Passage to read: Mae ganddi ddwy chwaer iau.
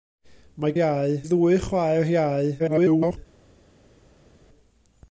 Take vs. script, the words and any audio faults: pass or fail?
fail